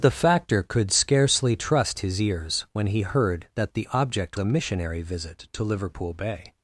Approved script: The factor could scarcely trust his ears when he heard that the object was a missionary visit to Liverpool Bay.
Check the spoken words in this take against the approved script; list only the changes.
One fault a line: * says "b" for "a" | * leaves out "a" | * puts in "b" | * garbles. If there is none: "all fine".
* leaves out "was"